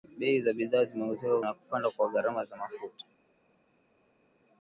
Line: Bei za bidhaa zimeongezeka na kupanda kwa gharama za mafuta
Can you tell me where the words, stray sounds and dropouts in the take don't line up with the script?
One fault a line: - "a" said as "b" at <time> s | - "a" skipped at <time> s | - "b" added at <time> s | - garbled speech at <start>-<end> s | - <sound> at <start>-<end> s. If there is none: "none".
none